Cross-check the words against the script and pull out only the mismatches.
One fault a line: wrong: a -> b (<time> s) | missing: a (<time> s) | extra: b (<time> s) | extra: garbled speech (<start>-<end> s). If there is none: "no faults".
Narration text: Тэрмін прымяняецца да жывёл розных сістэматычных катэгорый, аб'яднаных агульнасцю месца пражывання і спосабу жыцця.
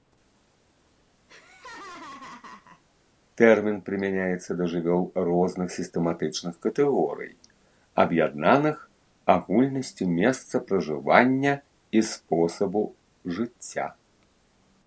no faults